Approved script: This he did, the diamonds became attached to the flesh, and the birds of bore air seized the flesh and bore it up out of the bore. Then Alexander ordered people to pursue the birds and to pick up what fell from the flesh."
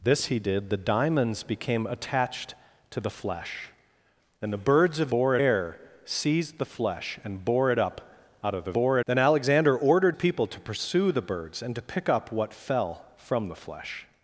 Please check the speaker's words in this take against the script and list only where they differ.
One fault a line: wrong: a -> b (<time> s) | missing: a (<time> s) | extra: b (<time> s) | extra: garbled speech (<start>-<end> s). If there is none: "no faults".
no faults